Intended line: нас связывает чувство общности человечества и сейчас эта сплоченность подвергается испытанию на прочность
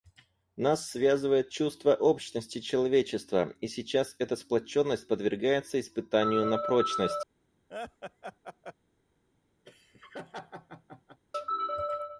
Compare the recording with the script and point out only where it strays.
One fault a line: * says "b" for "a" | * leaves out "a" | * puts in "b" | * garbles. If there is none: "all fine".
all fine